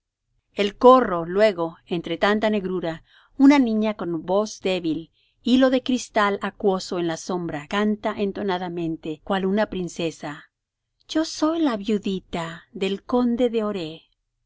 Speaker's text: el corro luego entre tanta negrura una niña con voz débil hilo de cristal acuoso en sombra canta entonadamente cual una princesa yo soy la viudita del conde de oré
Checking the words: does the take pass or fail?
fail